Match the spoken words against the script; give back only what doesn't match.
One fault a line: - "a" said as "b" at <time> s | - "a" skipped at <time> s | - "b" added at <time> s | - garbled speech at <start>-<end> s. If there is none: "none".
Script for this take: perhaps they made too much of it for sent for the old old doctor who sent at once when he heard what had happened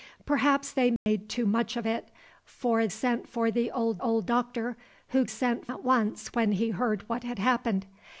none